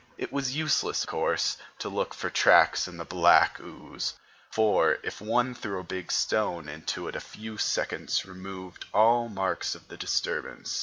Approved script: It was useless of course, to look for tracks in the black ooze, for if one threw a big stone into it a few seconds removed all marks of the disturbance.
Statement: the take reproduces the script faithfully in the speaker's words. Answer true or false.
false